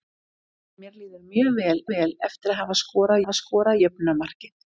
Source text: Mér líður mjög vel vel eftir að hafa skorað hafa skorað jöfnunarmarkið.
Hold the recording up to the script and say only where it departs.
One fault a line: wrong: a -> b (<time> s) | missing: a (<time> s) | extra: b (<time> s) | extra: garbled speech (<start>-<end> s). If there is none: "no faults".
no faults